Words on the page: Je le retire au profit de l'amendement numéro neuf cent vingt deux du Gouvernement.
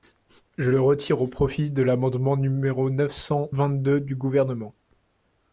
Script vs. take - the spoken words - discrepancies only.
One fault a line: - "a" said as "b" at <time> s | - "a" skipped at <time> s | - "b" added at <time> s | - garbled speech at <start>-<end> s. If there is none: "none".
none